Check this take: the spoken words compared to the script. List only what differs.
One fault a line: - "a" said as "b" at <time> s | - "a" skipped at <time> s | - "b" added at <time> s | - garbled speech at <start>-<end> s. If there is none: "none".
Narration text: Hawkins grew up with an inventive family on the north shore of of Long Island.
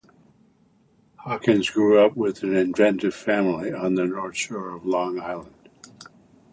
- "of" skipped at 4.9 s